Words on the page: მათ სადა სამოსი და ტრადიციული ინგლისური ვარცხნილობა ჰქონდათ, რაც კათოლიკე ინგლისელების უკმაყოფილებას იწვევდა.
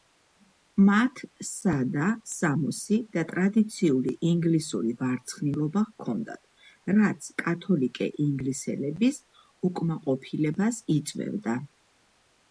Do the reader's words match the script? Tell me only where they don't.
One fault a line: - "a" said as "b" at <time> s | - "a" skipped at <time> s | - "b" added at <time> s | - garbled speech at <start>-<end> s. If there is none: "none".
none